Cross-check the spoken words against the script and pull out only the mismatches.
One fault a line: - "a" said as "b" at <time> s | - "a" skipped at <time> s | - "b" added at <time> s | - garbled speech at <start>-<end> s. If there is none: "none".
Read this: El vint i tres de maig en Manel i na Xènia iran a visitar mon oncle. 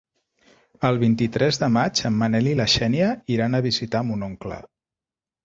none